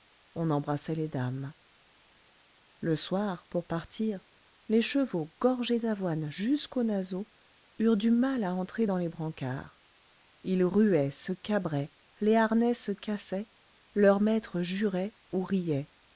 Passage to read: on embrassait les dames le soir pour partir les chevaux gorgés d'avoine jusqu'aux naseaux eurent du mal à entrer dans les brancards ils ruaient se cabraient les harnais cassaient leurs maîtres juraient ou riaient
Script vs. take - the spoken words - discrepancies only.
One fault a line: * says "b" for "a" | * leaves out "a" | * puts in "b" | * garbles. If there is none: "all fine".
* puts in "se"